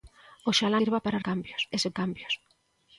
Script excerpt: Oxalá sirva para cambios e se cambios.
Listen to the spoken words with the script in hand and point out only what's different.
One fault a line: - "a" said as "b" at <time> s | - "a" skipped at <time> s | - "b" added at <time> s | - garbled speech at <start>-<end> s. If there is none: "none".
none